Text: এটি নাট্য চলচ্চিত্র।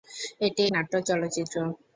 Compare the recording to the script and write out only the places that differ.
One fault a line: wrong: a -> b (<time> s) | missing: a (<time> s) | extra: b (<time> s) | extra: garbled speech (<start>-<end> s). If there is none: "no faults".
no faults